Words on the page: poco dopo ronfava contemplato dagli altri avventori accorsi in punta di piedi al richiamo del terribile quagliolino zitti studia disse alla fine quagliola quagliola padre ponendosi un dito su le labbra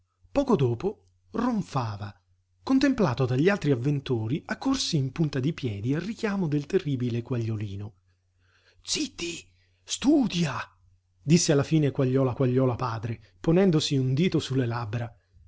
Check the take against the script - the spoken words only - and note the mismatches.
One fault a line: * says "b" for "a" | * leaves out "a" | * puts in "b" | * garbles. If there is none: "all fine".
all fine